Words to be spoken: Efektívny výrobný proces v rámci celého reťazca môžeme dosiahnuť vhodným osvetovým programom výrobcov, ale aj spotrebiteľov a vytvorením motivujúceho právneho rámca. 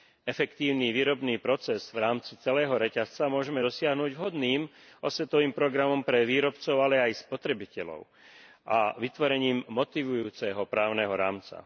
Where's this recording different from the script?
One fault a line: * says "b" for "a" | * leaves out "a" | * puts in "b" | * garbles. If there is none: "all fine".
* puts in "pre"